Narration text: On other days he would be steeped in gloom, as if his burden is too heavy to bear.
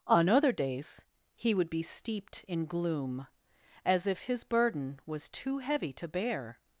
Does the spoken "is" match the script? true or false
false